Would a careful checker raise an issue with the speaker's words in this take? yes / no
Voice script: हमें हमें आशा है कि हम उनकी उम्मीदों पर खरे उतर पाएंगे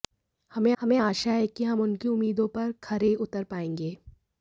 no